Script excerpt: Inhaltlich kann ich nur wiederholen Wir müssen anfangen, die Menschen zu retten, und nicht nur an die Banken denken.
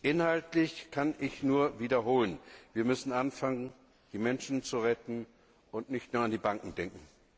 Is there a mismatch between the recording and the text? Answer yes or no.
no